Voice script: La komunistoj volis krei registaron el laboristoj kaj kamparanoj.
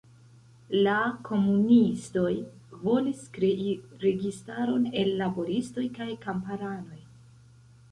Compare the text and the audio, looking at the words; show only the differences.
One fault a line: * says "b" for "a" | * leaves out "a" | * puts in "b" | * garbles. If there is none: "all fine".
all fine